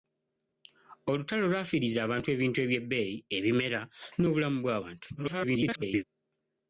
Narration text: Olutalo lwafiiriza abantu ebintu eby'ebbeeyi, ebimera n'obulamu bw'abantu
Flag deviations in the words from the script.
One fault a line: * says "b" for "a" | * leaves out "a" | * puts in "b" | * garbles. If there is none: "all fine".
* garbles